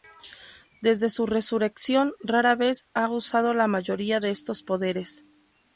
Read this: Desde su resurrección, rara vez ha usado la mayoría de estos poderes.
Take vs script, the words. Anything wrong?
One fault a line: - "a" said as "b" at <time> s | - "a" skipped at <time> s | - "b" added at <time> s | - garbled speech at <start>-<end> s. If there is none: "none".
none